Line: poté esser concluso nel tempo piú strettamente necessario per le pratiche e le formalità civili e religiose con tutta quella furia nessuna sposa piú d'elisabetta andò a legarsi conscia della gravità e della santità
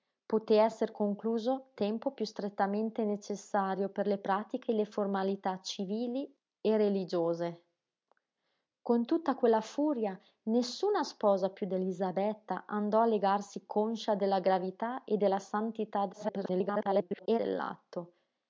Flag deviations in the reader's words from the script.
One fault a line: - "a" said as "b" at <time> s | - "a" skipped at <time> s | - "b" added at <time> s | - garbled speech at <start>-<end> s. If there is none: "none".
- "nel" skipped at 1.5 s
- garbled speech at 16.1-17.4 s